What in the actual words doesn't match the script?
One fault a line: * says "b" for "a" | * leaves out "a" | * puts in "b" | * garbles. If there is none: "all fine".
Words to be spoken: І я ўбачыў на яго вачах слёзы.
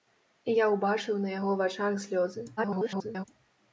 * garbles